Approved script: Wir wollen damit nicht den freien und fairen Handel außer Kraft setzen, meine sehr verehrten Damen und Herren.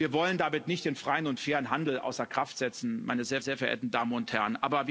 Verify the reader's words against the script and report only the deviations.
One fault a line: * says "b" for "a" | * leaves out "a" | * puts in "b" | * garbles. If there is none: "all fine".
* puts in "sehr"